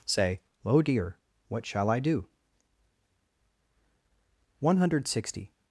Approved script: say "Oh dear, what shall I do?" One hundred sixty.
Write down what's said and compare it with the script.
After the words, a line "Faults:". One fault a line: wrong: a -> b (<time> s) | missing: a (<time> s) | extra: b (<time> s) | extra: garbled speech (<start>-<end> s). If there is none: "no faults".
say "Oh dear, what shall I do?" One hundred sixty.
Faults:
no faults